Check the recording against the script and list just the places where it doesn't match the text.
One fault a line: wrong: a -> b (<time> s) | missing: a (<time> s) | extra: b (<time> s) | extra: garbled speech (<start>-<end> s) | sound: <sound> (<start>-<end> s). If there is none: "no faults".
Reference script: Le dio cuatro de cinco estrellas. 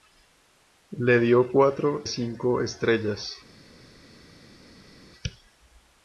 missing: de (2.0 s)